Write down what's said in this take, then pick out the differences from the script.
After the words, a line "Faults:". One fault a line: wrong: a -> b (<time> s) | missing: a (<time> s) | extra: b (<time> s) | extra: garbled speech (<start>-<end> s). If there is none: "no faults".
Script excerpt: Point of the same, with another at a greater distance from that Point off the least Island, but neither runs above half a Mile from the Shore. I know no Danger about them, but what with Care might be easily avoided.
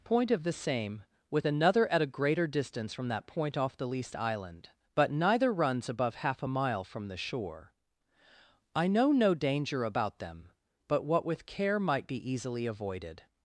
Point of the same, with another at a greater distance from that Point off the least Island, but neither runs above half a Mile from the Shore. I know no Danger about them, but what with Care might be easily avoided.
Faults:
no faults